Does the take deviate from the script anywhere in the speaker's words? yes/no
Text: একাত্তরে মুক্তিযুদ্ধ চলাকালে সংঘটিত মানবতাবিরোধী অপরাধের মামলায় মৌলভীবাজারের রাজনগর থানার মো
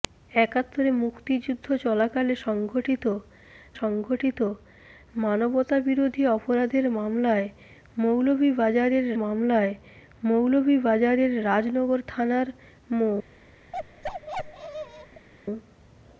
yes